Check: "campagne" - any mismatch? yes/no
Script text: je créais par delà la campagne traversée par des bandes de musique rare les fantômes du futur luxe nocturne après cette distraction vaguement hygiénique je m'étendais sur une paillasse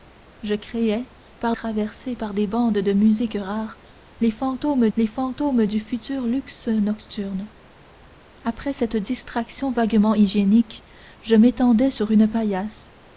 yes